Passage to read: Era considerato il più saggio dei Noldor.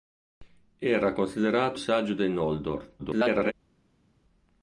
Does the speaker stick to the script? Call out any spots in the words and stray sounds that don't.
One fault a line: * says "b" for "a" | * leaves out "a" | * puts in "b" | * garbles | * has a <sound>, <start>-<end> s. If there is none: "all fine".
* leaves out "il più"
* garbles